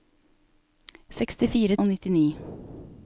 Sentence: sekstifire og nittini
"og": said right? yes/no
yes